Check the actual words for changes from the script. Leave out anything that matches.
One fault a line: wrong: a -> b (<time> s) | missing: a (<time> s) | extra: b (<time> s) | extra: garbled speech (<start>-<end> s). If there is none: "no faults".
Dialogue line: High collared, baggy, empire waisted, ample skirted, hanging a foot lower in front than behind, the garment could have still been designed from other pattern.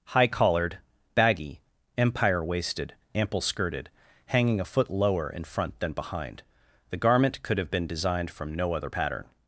missing: still (7.7 s)
extra: no (8.5 s)